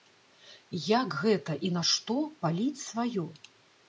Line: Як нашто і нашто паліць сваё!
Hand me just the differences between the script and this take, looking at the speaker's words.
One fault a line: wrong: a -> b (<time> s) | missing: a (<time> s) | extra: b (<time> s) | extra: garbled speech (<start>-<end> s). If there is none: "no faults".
wrong: нашто -> гэта (1.2 s)